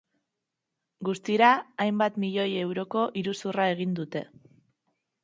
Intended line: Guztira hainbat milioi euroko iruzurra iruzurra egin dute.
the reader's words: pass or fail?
fail